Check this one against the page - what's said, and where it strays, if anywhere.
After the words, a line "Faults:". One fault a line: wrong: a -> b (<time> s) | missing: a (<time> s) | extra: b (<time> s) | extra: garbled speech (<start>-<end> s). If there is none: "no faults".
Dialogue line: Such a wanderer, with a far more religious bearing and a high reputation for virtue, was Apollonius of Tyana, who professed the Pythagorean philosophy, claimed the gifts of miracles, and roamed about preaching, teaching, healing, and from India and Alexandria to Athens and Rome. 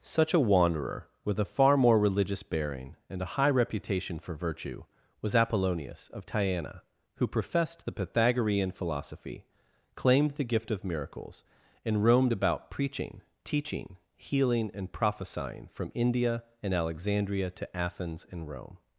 Such a wanderer, with a far more religious bearing and a high reputation for virtue, was Apollonius of Tyana, who professed the Pythagorean philosophy, claimed the gift of miracles, and roamed about preaching, teaching, healing, and prophesying from India and Alexandria to Athens and Rome.
Faults:
wrong: gifts -> gift (10.5 s)
extra: prophesying (14.9 s)